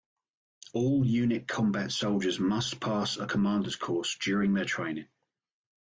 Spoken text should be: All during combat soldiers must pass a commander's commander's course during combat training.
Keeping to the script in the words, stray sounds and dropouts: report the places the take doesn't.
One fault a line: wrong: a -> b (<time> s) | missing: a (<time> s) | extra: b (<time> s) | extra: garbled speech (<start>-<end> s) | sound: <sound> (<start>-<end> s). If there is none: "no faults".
wrong: during -> unit (1.1 s)
missing: commander's (3.8 s)
wrong: combat -> their (4.5 s)